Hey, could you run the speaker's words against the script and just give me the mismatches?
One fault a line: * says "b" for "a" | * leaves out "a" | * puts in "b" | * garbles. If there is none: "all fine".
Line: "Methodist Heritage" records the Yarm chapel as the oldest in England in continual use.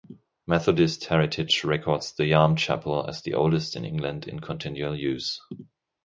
all fine